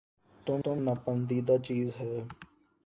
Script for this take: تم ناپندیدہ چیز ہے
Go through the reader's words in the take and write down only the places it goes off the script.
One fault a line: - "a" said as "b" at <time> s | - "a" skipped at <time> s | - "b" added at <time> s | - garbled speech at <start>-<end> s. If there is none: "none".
- "تم" added at 0.6 s